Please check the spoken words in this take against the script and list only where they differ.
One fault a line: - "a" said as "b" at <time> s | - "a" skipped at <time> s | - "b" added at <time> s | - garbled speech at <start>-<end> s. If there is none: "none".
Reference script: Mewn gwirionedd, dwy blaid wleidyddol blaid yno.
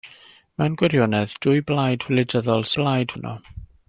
none